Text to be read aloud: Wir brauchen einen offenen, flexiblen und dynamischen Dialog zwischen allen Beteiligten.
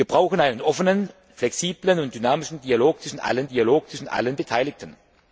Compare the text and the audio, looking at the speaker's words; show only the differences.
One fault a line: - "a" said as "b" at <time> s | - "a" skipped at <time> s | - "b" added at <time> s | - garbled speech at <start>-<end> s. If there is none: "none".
- "Dialog zwischen allen" added at 3.5 s